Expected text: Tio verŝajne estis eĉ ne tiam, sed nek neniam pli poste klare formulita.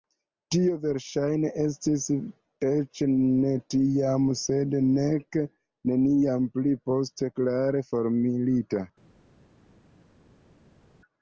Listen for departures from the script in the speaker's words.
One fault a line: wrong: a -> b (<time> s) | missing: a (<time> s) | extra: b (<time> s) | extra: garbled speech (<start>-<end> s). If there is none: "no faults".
no faults